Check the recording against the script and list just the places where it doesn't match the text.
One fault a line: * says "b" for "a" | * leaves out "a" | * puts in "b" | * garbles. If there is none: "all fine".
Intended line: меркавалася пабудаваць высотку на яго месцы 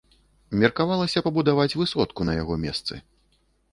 all fine